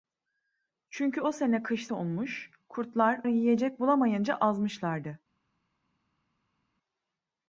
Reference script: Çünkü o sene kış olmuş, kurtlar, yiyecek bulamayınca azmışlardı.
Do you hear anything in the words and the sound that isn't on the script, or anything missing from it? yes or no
no